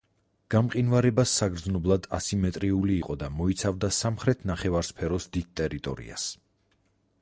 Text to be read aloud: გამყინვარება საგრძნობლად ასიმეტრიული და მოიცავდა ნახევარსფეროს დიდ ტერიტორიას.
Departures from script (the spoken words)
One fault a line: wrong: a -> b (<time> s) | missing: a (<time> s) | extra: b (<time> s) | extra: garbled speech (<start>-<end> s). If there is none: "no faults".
extra: იყო (3.0 s)
extra: სამხრეთ (4.0 s)